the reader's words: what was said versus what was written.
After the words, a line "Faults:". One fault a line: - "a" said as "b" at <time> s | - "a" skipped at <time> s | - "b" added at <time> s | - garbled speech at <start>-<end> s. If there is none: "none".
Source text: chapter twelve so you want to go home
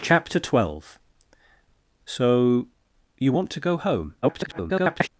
chapter twelve so you want to go home [garbled]
Faults:
- garbled speech at 4.2-5.1 s